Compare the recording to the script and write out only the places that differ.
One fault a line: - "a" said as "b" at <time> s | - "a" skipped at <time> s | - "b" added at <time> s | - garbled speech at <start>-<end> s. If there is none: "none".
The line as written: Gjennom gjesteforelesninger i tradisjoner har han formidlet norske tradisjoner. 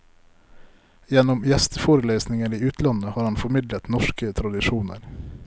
- "tradisjoner" said as "utlandet" at 2.6 s